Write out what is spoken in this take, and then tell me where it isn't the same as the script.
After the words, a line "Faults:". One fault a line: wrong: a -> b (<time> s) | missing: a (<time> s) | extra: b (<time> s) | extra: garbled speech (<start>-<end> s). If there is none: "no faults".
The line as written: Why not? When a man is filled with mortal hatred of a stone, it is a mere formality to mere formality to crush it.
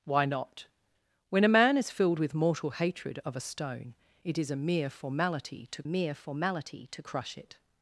Why not? When a man is filled with mortal hatred of a stone, it is a mere formality to mere formality to crush it.
Faults:
no faults